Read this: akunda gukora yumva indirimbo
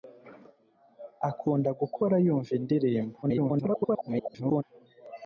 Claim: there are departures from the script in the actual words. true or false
true